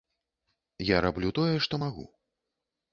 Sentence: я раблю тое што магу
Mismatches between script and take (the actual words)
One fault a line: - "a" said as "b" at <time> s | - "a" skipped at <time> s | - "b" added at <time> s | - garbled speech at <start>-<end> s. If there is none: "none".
none